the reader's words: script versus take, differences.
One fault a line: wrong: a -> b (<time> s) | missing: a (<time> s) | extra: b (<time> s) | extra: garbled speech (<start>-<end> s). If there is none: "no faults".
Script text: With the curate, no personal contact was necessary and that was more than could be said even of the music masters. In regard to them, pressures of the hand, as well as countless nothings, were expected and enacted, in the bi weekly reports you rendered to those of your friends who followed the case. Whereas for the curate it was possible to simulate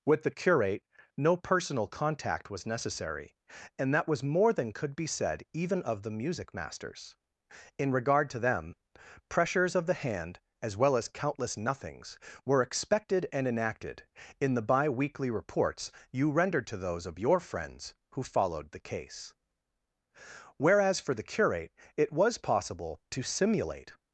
no faults